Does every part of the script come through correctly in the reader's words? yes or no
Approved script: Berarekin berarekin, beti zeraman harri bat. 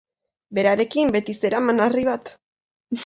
no